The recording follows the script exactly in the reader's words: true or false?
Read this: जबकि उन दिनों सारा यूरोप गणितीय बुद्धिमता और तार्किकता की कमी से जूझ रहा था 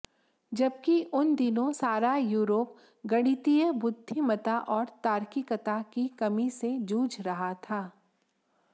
true